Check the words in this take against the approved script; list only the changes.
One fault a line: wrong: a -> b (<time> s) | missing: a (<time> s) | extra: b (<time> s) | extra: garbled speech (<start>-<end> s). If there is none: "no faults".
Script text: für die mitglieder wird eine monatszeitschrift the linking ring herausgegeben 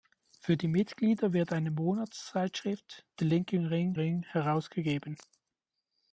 extra: ring (3.9 s)